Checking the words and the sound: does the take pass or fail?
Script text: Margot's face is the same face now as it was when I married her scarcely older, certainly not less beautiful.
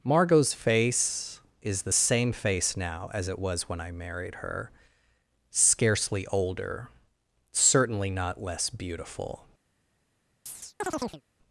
fail